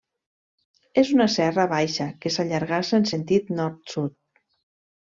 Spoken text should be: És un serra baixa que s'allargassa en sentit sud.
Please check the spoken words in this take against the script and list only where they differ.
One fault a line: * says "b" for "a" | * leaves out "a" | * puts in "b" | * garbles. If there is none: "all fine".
* says "una" for "un"
* puts in "nord"